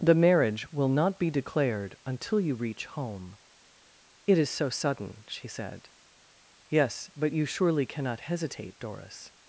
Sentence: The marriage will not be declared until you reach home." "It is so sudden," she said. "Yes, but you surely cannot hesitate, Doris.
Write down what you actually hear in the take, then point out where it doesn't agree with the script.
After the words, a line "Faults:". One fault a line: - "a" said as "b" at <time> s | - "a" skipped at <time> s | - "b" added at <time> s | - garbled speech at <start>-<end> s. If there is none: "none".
The marriage will not be declared until you reach home." "It is so sudden," she said. "Yes, but you surely cannot hesitate, Doris.
Faults:
none